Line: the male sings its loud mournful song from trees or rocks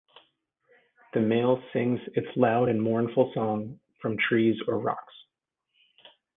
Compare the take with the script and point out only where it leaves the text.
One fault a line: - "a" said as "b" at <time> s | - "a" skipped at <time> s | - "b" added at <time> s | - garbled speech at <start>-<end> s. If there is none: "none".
- "and" added at 2.7 s